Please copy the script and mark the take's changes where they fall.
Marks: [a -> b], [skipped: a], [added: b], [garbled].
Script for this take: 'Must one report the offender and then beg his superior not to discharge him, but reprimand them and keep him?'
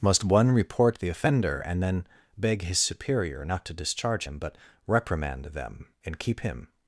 'Must one report the offender and then beg his superior not to discharge him, but reprimand them and keep him?'